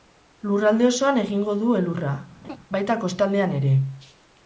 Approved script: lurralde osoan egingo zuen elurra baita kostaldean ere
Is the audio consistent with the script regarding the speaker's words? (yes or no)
no